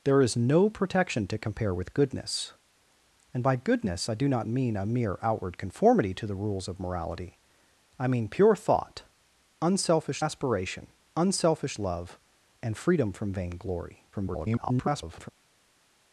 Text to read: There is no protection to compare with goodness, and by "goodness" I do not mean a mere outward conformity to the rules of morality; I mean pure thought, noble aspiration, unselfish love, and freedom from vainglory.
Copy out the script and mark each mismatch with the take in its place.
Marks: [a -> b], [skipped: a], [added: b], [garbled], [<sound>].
There is no protection to compare with goodness, and by "goodness" I do not mean a mere outward conformity to the rules of morality; I mean pure thought, [noble -> unselfish] aspiration, unselfish love, and freedom from vainglory. [garbled]